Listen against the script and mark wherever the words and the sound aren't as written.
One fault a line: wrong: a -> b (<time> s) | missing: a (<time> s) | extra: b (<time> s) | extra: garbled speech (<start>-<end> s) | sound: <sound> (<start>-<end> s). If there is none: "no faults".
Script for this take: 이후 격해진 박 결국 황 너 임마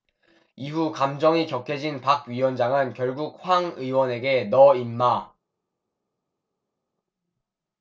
extra: 감정이 (0.9 s)
extra: 위원장은 (2.3 s)
extra: 의원에게 (3.8 s)